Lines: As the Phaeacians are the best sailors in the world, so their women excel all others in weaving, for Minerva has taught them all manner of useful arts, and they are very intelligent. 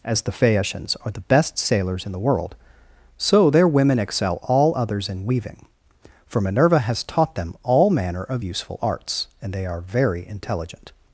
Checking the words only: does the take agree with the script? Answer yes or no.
yes